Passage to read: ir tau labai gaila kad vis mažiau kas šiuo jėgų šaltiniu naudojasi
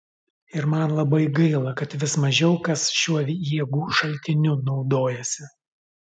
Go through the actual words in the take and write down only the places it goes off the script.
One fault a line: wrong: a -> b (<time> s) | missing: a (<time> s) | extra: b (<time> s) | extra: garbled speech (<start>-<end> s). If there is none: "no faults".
wrong: tau -> man (0.7 s)